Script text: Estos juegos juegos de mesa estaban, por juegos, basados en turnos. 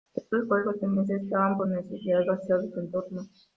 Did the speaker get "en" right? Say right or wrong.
right